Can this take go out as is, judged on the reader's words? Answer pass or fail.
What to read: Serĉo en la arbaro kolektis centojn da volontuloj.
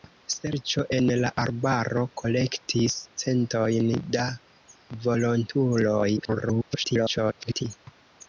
fail